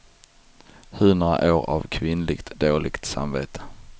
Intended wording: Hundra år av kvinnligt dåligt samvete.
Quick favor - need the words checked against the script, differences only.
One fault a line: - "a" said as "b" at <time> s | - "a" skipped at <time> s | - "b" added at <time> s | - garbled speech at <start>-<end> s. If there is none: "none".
none